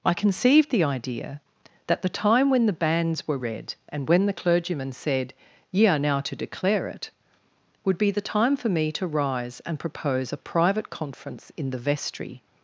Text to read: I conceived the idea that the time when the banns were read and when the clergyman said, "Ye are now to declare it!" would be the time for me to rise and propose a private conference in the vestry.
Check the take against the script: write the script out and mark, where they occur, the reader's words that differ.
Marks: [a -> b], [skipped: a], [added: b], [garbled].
I conceived the idea that the time when the banns were read and when the clergyman said, "Ye are now to declare it!" would be the time for me to rise and propose a private conference in the vestry.